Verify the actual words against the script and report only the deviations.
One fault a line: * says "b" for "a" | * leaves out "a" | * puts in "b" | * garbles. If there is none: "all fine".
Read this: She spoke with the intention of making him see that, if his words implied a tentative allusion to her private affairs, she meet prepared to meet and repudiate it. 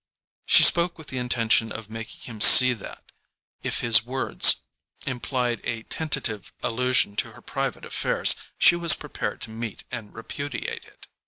* says "was" for "meet"